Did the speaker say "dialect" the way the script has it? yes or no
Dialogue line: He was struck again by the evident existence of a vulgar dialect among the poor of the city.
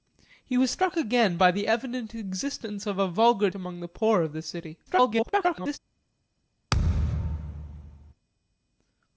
no